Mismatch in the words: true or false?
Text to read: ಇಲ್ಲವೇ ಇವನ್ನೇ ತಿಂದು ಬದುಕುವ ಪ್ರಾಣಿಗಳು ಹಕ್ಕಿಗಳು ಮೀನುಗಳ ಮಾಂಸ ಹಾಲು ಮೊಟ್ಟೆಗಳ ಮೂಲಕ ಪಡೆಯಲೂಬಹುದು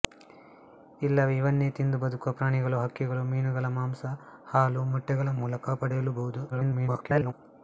true